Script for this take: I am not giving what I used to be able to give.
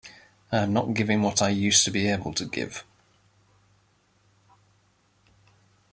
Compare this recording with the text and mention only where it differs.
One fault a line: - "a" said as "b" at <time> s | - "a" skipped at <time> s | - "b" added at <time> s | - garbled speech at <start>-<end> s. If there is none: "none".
none